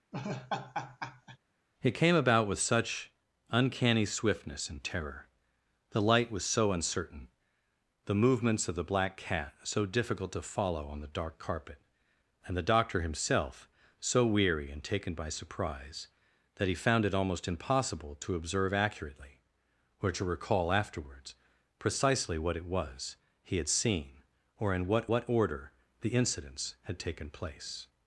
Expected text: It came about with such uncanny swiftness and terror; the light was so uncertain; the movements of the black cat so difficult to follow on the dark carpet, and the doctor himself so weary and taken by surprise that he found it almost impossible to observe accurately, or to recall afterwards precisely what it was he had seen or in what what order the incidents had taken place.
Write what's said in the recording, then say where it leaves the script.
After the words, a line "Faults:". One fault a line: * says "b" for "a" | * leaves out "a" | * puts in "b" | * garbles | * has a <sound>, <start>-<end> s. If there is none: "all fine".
It came about with such uncanny swiftness and terror; the light was so uncertain; the movements of the black cat so difficult to follow on the dark carpet, and the doctor himself so weary and taken by surprise that he found it almost impossible to observe accurately, or to recall afterwards precisely what it was he had seen or in what what order the incidents had taken place.
Faults:
* has a laugh, 0.1-1.4 s